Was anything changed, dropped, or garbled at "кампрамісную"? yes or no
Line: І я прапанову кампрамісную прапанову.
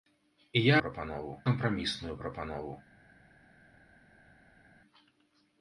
no